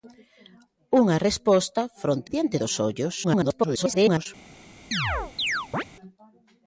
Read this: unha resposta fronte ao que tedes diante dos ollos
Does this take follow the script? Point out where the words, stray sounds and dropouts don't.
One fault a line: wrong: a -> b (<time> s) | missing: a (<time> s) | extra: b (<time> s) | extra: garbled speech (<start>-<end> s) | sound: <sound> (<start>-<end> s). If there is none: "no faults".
missing: ao que tedes (2.3 s)
extra: garbled speech (3.2-4.3 s)
sound: chirp (4.9-5.8 s)